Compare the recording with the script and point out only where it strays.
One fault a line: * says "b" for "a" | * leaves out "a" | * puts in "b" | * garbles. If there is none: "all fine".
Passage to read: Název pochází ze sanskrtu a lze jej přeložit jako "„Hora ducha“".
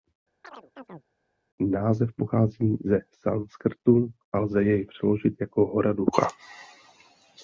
all fine